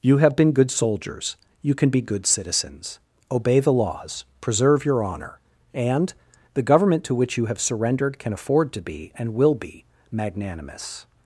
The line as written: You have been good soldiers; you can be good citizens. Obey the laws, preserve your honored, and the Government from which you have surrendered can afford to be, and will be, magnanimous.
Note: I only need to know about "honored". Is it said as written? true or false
false